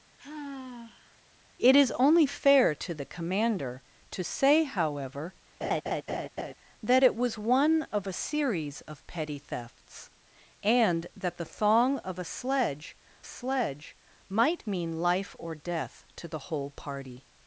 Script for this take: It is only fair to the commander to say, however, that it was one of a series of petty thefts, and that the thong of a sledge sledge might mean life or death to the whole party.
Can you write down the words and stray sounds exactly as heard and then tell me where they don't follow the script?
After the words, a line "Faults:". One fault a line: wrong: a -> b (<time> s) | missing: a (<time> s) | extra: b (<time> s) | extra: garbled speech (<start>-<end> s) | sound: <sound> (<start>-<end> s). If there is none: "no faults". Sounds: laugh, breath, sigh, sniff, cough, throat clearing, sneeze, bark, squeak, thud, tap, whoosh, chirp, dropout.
It is only fair to the commander to say, however, that it was one of a series of petty thefts, and that the thong of a sledge sledge might mean life or death to the whole party.
Faults:
sound: sigh (0.2-1.2 s)
sound: laugh (5.6-6.5 s)